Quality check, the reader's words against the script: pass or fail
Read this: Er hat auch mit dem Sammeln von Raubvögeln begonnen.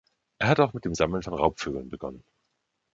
pass